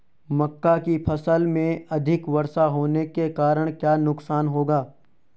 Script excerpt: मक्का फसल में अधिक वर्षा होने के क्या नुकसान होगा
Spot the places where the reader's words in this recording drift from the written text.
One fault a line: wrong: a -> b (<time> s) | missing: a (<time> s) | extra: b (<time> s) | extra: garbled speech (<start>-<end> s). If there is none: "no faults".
extra: की (0.8 s)
extra: कारण (3.3 s)